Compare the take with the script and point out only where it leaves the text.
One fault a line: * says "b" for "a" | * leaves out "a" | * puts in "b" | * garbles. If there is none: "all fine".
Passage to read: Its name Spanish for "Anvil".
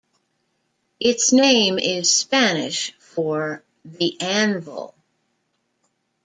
* puts in "is"
* puts in "The"